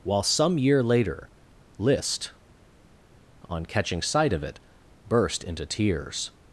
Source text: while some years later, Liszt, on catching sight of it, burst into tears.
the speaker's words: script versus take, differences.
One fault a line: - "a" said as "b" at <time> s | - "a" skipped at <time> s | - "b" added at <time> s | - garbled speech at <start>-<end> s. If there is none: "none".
- "years" said as "year" at 0.6 s